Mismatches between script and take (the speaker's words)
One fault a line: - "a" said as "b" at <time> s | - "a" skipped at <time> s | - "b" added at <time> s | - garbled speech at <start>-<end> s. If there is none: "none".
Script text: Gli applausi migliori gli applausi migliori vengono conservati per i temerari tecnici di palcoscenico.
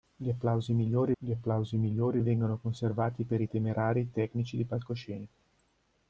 none